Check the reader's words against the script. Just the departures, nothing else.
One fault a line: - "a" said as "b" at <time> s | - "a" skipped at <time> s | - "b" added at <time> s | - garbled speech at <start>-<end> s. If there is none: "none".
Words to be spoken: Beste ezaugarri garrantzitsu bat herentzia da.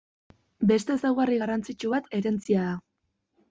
none